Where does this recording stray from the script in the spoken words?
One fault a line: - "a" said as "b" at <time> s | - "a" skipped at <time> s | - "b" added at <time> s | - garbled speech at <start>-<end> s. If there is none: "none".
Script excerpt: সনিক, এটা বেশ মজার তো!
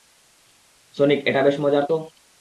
none